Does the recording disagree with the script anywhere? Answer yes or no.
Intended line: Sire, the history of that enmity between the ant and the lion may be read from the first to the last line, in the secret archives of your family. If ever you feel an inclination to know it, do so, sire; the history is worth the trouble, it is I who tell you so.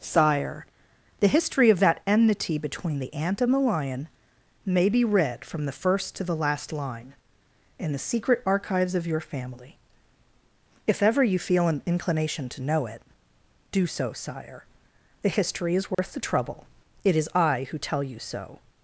no